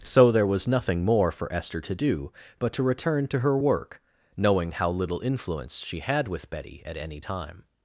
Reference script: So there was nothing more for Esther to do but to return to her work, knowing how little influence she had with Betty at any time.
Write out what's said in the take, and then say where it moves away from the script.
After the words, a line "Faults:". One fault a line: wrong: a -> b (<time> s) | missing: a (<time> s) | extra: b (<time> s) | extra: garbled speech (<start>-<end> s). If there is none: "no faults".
So there was nothing more for Esther to do but to return to her work, knowing how little influence she had with Betty at any time.
Faults:
no faults